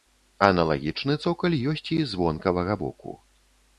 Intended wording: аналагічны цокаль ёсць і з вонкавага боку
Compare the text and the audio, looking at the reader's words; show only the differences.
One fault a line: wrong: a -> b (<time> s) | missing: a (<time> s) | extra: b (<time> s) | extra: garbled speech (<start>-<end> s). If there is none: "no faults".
no faults